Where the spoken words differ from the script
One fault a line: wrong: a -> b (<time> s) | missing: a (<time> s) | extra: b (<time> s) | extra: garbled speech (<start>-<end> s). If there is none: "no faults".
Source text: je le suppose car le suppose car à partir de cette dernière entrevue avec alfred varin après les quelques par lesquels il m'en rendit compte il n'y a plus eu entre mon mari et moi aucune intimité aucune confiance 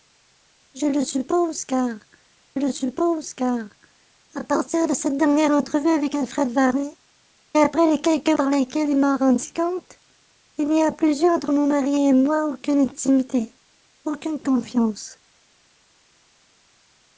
no faults